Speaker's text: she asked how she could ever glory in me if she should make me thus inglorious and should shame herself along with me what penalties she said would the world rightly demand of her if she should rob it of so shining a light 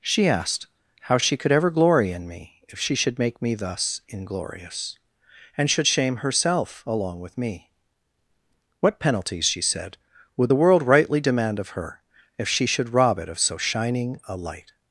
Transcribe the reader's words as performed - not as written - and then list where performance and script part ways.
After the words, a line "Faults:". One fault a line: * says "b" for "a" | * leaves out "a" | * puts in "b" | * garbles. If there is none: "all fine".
she asked how she could ever glory in me if she should make me thus inglorious and should shame herself along with me what penalties she said would the world rightly demand of her if she should rob it of so shining a light
Faults:
all fine